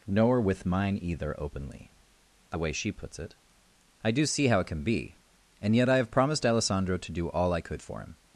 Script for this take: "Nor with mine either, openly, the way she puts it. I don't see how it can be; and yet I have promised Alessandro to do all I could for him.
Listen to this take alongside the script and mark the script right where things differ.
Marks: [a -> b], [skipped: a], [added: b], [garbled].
"Nor with mine either, openly, the way she puts it. I [don't -> do] see how it can be; and yet I have promised Alessandro to do all I could for him.